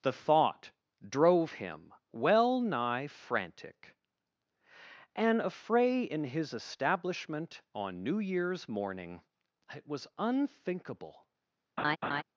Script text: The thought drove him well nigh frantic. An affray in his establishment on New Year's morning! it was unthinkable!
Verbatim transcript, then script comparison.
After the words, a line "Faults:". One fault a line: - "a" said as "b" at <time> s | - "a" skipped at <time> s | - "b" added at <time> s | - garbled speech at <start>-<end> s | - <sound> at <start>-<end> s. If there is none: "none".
The thought drove him well nigh frantic. An affray in his establishment on New Year's morning! it was unthinkable!
Faults:
- laugh at 11.8-12.2 s